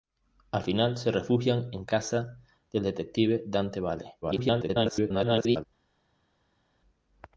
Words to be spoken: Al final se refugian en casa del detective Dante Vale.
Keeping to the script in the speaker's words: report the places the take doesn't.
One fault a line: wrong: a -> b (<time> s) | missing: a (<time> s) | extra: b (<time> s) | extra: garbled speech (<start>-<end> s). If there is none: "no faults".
extra: garbled speech (4.2-5.6 s)